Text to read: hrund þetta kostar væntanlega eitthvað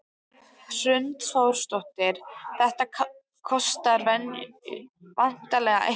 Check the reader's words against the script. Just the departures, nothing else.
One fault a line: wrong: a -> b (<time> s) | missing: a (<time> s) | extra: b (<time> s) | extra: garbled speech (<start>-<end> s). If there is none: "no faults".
extra: þórsdóttir (1.3 s)